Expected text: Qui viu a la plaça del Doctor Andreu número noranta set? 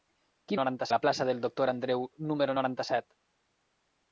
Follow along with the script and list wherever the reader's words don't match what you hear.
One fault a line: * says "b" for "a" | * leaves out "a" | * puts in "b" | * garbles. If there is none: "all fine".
* says "noranta" for "viu"